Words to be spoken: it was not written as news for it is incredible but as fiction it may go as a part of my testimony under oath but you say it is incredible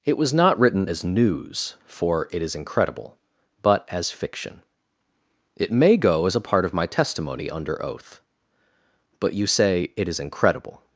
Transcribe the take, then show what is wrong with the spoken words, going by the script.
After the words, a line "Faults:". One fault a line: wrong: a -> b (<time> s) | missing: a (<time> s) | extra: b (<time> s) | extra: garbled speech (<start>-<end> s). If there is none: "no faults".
it was not written as news for it is incredible but as fiction it may go as a part of my testimony under oath but you say it is incredible
Faults:
no faults